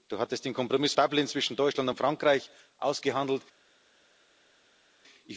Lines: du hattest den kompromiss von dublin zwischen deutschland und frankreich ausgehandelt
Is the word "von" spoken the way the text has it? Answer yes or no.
no